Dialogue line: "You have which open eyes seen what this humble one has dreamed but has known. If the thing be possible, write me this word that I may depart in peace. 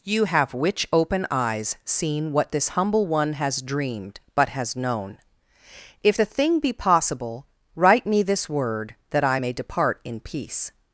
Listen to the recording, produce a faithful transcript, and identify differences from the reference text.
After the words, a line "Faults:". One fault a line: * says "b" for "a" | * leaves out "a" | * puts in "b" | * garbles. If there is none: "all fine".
"You have which open eyes seen what this humble one has dreamed but has known. If the thing be possible, write me this word that I may depart in peace.
Faults:
all fine